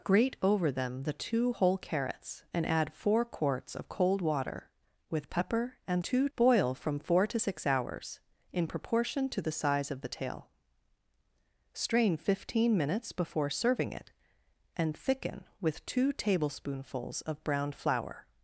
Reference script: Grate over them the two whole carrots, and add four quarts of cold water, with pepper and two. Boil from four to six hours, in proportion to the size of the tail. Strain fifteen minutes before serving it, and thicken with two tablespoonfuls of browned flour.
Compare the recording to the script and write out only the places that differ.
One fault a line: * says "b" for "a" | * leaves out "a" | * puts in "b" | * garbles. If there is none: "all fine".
all fine